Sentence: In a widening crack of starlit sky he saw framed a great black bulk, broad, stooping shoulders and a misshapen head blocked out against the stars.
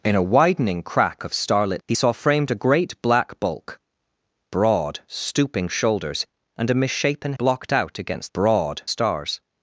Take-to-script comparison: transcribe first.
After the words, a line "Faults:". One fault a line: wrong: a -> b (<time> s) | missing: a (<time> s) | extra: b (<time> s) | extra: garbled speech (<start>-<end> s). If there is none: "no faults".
In a widening crack of starlit he saw framed a great black bulk, broad, stooping shoulders and a misshapen blocked out against broad stars.
Faults:
missing: sky (1.8 s)
missing: head (7.3 s)
wrong: the -> broad (8.3 s)